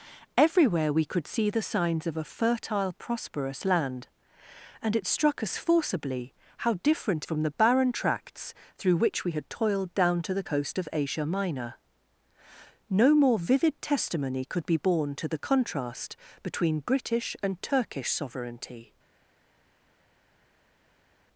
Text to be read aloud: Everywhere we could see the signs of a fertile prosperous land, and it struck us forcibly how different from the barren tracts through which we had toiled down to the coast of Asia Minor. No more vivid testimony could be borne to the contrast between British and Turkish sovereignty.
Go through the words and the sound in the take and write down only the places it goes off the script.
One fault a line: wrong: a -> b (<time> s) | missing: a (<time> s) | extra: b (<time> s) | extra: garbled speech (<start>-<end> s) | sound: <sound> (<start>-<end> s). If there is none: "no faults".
no faults